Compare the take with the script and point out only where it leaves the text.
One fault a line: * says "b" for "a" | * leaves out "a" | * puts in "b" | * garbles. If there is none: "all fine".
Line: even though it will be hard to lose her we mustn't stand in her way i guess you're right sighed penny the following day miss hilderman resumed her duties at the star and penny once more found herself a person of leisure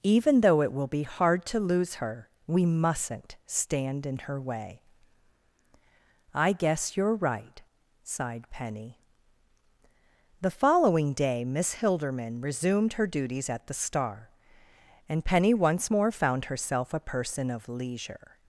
all fine